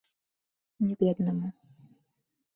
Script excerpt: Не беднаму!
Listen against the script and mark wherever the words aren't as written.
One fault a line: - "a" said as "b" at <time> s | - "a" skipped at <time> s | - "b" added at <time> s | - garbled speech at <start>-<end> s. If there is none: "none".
none